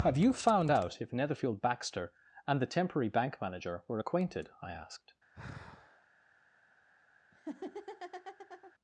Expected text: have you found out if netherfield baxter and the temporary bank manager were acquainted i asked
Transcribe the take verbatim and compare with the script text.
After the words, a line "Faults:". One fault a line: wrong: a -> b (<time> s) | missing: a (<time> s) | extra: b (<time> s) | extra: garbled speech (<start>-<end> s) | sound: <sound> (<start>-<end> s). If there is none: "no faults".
have you found out if netherfield baxter and the temporary bank manager were acquainted i asked
Faults:
sound: sigh (5.3-6.1 s)
sound: laugh (7.3-8.7 s)